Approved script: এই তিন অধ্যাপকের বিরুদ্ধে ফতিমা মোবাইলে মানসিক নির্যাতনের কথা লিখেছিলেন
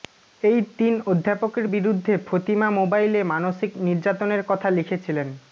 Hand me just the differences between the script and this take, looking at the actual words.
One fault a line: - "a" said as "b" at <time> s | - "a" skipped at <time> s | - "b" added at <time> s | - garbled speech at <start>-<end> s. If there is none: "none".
none